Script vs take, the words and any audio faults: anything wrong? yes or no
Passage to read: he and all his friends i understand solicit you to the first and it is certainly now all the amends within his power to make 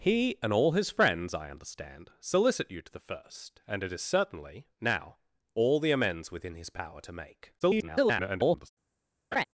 yes